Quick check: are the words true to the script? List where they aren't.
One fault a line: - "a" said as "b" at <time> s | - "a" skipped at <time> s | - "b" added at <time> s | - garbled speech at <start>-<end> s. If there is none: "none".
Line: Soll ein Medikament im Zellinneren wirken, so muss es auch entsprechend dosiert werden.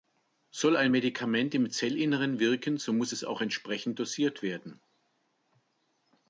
none